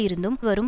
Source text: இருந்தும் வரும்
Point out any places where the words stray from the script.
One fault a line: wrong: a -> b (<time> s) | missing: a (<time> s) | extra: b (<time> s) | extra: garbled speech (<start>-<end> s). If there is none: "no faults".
no faults